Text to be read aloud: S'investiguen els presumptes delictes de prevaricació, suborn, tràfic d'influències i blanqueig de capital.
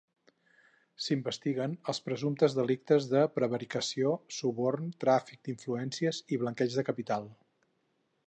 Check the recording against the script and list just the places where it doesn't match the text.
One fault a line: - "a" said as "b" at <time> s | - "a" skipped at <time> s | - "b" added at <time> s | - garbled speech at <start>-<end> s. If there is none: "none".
none